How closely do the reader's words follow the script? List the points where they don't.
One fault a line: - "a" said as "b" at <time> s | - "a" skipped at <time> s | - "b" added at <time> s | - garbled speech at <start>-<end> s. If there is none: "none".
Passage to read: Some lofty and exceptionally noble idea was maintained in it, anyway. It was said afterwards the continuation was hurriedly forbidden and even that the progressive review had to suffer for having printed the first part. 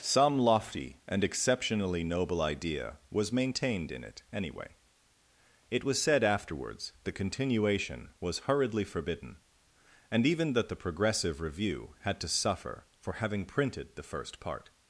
none